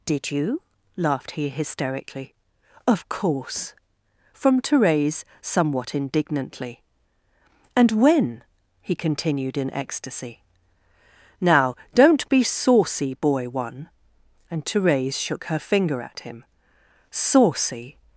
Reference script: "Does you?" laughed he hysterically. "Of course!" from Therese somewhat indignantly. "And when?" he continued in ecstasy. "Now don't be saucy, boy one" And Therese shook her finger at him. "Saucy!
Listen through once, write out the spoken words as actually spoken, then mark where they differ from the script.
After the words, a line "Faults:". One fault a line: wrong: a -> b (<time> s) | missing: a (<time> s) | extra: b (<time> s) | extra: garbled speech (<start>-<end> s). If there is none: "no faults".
"Did you?" laughed he hysterically. "Of course!" from Therese somewhat indignantly. "And when?" he continued in ecstasy. "Now don't be saucy, boy one" And Therese shook her finger at him. "Saucy!
Faults:
wrong: Does -> Did (0.1 s)